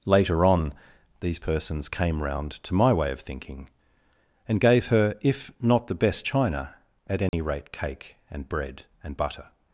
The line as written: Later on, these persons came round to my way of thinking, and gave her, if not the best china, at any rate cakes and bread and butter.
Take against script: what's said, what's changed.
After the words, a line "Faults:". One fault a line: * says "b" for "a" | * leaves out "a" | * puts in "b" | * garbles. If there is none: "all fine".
Later on, these persons came round to my way of thinking, and gave her, if not the best china, at any rate cake and bread and butter.
Faults:
* says "cake" for "cakes"